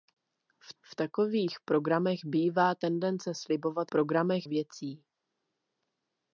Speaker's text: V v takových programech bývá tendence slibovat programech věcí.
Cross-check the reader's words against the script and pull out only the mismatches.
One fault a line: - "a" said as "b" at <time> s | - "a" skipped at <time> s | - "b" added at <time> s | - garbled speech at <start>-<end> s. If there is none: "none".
none